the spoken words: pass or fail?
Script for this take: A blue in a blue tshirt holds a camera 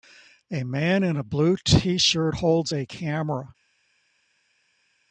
fail